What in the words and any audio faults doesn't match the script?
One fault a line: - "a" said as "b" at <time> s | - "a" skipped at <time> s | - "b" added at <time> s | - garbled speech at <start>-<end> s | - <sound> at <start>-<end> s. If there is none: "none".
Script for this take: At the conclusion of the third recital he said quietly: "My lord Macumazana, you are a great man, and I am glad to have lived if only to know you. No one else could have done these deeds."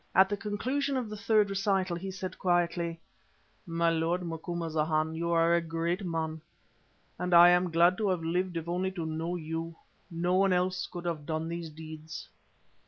none